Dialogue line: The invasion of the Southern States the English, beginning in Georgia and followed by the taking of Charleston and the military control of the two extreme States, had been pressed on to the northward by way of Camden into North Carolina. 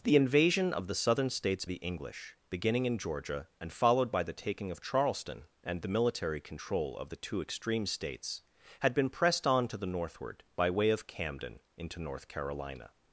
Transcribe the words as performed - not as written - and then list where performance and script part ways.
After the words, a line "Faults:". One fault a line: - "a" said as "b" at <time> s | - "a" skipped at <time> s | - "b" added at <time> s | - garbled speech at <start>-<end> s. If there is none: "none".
The invasion of the Southern States the English, beginning in Georgia and followed by the taking of Charleston and the military control of the two extreme States, had been pressed on to the northward by way of Camden into North Carolina.
Faults:
none